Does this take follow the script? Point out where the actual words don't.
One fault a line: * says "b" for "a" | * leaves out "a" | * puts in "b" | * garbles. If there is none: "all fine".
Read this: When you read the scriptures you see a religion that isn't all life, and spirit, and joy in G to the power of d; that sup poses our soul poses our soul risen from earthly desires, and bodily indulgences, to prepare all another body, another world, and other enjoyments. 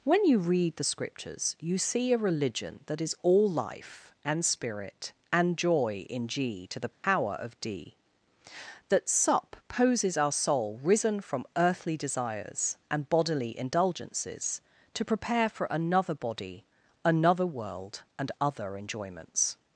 * says "is" for "isn't"
* leaves out "poses our soul"
* says "for" for "all"